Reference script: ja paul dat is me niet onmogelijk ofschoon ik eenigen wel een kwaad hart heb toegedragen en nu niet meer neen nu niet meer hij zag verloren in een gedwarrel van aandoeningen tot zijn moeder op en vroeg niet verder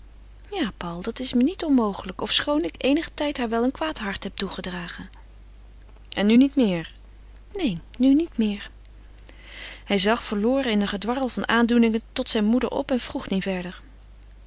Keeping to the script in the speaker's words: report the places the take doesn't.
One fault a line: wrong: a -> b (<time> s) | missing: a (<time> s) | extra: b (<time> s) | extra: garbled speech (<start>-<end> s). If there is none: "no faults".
extra: tijd haar (3.1 s)